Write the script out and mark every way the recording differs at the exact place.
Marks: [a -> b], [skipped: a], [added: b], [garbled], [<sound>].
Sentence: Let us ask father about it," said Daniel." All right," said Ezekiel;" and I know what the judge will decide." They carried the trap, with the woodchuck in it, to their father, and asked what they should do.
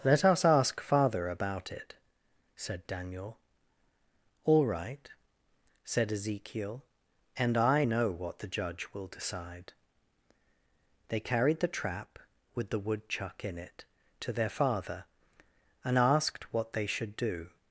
Let us ask father about it," said Daniel." All right," said Ezekiel;" and I know what the judge will decide." They carried the trap, with the woodchuck in it, to their father, and asked what they should do.